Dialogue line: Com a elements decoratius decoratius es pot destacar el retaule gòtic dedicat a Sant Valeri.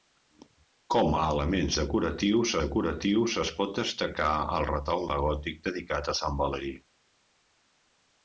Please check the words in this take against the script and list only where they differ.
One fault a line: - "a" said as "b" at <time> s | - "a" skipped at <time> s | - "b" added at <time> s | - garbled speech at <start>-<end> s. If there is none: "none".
none